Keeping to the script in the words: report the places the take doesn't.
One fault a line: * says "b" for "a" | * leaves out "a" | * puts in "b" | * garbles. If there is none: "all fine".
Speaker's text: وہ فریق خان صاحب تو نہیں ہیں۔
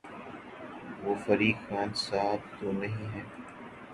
all fine